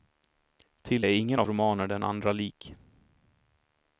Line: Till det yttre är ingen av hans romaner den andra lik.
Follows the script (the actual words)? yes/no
no